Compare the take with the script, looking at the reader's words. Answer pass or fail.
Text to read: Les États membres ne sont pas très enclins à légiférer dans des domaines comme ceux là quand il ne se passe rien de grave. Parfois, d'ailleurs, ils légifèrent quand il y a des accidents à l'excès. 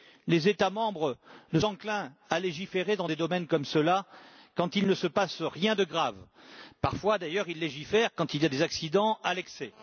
fail